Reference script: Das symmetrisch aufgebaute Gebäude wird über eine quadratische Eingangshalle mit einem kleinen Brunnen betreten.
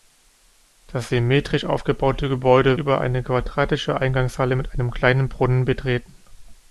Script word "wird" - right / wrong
wrong